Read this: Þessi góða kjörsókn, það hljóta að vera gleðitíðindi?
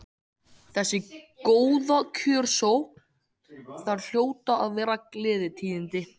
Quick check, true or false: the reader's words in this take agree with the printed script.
true